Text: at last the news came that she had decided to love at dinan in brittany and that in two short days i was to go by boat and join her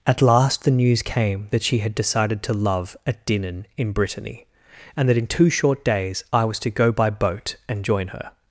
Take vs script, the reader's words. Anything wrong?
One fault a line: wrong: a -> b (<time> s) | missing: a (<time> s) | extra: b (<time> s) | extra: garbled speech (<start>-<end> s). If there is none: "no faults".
no faults